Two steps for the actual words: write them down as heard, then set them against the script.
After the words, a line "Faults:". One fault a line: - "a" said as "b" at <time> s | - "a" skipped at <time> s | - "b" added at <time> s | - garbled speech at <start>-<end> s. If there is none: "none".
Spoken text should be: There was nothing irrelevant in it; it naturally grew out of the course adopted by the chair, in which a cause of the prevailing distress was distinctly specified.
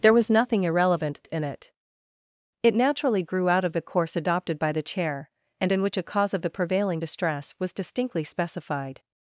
There was nothing irrelevant in it; it naturally grew out of the course adopted by the chair, and in which a cause of the prevailing distress was distinctly specified.
Faults:
- "and" added at 5.6 s